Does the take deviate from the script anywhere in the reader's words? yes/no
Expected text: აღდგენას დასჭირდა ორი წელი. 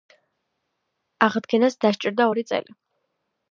no